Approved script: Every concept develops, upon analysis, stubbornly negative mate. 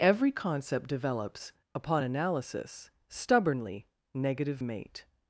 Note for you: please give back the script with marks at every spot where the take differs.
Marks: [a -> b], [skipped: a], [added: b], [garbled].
Every concept develops, upon analysis, stubbornly negative mate.